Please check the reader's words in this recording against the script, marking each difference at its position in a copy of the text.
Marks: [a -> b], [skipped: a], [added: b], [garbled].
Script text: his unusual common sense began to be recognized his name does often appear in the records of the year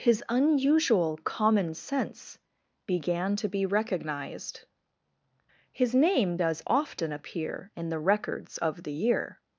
his unusual common sense began to be recognized his name does often appear in the records of the year